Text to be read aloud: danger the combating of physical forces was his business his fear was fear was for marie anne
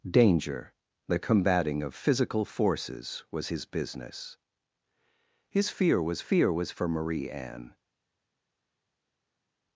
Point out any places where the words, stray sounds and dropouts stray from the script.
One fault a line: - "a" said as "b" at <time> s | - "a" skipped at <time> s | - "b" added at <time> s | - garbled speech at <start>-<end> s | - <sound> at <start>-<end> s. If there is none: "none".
none